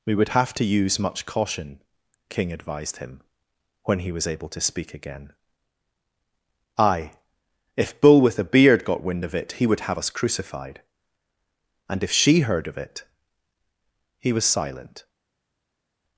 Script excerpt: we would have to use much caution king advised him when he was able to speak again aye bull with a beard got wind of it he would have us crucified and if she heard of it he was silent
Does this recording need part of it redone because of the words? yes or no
yes